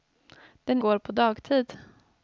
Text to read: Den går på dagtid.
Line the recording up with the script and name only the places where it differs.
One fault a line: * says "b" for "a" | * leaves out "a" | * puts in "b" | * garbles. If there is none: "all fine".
all fine